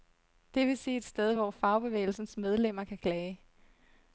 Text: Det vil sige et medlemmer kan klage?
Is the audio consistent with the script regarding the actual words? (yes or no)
no